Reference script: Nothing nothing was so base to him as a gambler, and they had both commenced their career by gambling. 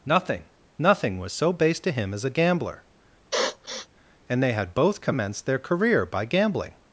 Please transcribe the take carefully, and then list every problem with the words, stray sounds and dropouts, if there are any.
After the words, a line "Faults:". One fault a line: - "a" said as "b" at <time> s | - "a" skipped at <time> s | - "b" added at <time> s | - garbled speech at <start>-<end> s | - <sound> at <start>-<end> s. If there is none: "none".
Nothing nothing was so base to him as a gambler, and they had both commenced their career by gambling.
Faults:
- sniff at 3.3-3.9 s